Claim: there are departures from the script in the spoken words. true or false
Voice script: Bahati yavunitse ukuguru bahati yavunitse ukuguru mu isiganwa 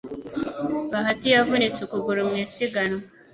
true